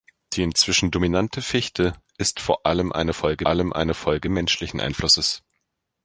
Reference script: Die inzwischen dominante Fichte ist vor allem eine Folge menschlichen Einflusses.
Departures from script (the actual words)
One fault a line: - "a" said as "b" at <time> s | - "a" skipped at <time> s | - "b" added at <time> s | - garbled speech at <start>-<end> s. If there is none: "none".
- "allem eine Folge" added at 3.5 s